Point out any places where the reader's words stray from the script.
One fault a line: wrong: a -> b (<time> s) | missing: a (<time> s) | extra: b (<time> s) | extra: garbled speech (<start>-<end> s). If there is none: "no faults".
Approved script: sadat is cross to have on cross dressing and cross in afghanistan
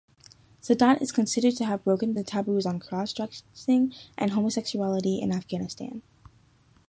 wrong: cross -> considered (1.1 s)
extra: broken the taboos (1.8 s)
wrong: cross -> homosexuality (4.3 s)